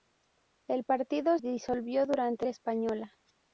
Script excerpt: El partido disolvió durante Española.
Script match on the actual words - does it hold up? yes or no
yes